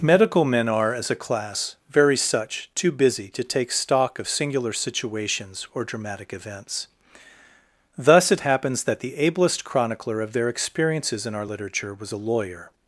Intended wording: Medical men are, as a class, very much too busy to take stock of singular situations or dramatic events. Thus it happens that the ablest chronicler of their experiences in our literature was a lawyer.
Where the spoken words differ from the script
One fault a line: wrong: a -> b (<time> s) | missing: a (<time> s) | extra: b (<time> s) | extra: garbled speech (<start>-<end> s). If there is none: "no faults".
wrong: much -> such (2.2 s)